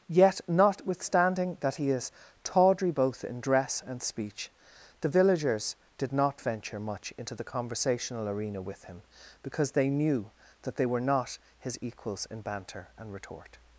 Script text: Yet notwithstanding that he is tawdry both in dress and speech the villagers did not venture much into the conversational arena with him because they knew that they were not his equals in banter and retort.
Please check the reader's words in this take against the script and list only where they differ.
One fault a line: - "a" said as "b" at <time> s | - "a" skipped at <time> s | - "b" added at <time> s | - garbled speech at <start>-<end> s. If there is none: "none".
none